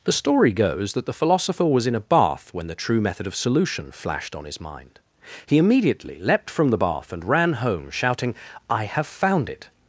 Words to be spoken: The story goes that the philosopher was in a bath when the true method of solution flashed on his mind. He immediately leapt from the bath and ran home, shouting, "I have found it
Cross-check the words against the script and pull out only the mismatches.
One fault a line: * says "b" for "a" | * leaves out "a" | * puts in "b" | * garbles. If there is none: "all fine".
all fine